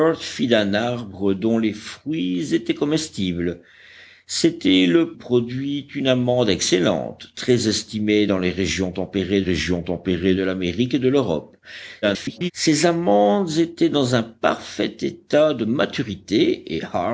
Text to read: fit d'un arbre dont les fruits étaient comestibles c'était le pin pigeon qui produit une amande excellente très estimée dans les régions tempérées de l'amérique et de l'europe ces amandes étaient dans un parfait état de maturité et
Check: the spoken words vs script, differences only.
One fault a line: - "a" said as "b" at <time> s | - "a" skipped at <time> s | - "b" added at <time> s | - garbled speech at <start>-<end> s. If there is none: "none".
- "pin pigeon qui" skipped at 5.1 s
- "régions tempérées" added at 9.4 s
- garbled speech at 12.0-12.5 s